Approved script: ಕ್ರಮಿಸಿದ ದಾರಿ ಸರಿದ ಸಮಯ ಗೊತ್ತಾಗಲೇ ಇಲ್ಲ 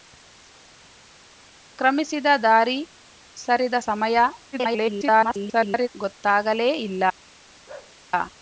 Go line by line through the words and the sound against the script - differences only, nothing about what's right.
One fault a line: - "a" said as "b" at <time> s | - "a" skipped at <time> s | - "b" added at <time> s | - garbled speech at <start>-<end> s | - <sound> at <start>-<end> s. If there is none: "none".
- garbled speech at 4.5-5.9 s
- bark at 7.7-8.0 s